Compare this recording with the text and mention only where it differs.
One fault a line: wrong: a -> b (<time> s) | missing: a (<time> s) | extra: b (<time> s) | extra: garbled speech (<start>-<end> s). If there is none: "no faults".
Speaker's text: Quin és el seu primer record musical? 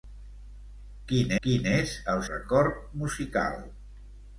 extra: quin (1.5 s)
missing: seu primer (2.2 s)